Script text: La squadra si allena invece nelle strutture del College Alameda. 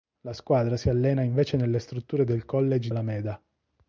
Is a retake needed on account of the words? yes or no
no